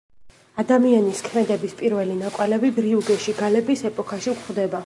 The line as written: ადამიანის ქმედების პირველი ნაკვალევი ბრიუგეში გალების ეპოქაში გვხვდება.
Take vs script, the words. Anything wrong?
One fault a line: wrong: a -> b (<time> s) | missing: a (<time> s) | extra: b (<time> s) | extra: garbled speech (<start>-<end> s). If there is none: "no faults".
no faults